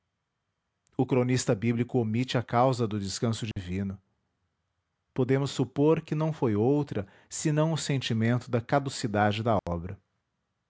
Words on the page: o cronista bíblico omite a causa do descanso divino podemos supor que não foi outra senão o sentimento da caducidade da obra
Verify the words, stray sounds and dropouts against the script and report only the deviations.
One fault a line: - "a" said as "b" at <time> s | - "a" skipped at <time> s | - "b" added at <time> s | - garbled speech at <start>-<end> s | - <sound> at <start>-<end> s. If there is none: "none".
- dropout at 3.5-3.6 s
- dropout at 9.6-9.7 s